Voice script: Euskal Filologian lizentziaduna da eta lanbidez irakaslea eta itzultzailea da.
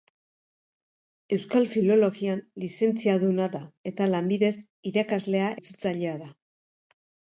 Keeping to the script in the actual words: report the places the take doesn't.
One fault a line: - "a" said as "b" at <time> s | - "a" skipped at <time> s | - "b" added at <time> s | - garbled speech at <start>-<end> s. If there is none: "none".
- "eta" skipped at 5.5 s